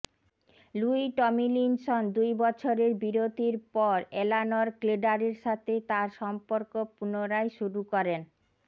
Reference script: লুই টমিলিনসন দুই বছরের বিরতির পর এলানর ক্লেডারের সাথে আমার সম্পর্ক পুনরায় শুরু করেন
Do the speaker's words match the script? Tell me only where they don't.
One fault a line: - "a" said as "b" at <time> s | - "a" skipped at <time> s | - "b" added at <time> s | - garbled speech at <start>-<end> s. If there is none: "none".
- "আমার" said as "তার" at 5.9 s